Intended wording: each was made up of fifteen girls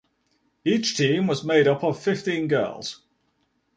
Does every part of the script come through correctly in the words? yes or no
no